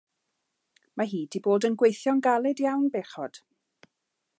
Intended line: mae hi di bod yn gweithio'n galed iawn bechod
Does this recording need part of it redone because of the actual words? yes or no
no